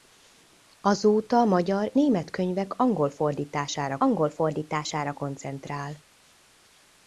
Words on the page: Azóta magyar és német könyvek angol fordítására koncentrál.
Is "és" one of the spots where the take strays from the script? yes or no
yes